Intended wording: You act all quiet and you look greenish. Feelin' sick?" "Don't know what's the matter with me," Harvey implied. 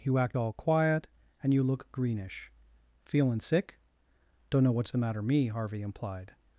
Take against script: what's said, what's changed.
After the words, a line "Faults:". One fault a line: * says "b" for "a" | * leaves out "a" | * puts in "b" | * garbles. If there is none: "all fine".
You act all quiet and you look greenish. Feelin' sick?" "Don't know what's the matter me," Harvey implied.
Faults:
* leaves out "with"